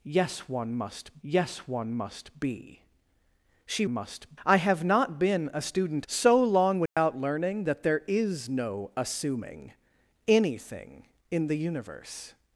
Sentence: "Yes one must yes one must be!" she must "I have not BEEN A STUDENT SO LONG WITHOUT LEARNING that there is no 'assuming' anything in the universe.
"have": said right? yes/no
yes